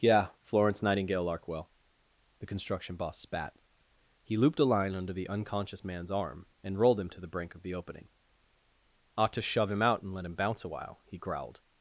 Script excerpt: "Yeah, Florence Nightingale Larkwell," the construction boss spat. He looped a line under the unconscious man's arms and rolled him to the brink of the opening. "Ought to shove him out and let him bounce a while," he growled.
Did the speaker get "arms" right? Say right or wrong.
wrong